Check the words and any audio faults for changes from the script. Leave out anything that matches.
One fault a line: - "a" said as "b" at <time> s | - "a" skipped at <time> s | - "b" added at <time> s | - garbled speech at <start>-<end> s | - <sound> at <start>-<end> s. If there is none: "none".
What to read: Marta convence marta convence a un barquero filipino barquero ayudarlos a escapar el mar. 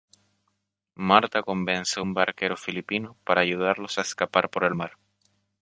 - "marta convence" skipped at 2.0 s
- "barquero" said as "para" at 3.2 s
- "por" added at 4.5 s